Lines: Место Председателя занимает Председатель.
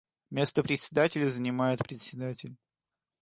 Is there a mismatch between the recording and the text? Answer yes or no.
no